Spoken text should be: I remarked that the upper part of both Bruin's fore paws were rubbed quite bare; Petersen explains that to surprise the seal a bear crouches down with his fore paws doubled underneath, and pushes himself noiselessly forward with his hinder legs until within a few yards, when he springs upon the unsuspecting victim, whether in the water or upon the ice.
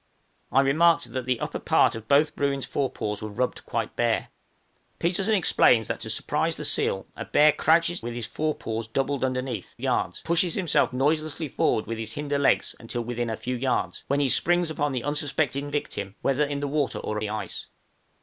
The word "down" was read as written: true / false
false